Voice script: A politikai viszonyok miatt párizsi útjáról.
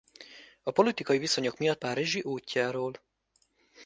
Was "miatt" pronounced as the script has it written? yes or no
yes